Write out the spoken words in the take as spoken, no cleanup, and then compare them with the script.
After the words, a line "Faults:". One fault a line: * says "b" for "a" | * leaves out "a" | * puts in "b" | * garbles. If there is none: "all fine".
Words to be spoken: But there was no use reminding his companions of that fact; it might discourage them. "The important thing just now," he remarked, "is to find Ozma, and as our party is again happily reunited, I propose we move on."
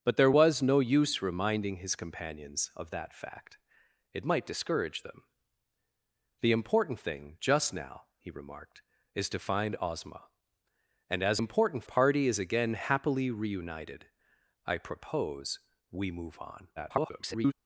But there was no use reminding his companions of that fact; it might discourage them. "The important thing just now," he remarked, "is to find Ozma, and as important party is again happily reunited, I propose we move on." [garbled]
Faults:
* says "important" for "our"
* garbles